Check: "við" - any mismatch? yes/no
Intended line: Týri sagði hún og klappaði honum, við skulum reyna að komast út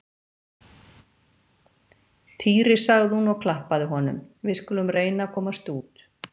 no